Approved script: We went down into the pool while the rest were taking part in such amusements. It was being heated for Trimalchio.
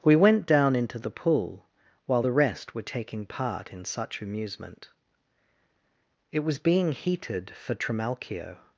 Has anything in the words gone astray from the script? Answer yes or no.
yes